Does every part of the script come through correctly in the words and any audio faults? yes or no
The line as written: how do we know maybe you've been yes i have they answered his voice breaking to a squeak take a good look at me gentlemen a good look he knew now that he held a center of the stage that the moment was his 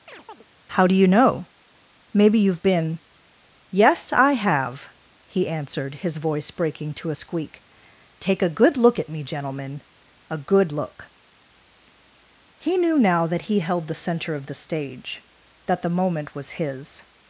no